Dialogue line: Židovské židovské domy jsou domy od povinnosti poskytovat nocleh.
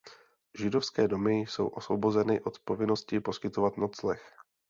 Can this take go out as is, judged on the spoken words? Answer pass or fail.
fail